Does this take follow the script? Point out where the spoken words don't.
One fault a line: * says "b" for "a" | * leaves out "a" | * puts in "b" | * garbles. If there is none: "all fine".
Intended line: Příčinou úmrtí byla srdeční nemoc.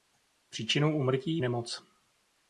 * leaves out "byla srdeční"